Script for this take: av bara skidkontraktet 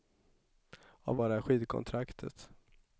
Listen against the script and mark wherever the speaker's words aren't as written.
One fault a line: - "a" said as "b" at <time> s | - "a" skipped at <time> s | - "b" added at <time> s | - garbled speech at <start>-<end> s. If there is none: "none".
none